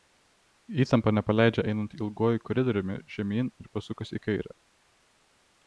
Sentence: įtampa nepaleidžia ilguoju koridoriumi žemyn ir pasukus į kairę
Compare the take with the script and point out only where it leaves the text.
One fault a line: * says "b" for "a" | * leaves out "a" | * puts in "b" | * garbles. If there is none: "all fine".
* puts in "einant"